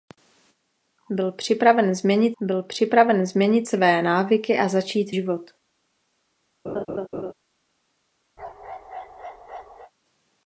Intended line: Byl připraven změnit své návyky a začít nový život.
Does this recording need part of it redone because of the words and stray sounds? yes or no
yes